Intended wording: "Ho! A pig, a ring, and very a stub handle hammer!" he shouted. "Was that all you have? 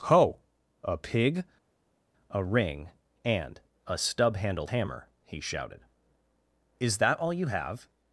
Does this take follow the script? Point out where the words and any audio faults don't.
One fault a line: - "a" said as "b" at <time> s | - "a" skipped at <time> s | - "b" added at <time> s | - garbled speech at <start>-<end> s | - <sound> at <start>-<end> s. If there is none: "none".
- "very" skipped at 3.6 s
- "handle" said as "handled" at 4.4 s
- "Was" said as "Is" at 6.8 s